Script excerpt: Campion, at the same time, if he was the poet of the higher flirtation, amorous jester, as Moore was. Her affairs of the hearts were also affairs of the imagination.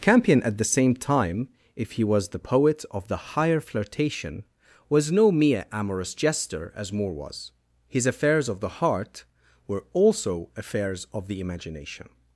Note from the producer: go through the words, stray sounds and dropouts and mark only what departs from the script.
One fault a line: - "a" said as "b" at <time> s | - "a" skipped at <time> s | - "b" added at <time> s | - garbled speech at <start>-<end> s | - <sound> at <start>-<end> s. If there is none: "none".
- "was no mere" added at 4.9 s
- "Her" said as "His" at 7.9 s
- "hearts" said as "heart" at 8.8 s